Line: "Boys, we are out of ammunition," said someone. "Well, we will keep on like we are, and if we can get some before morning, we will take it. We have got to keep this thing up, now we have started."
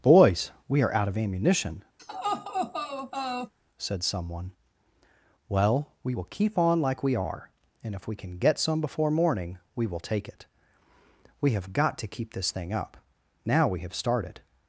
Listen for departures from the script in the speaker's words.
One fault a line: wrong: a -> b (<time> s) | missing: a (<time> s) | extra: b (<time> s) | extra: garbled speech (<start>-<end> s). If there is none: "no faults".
no faults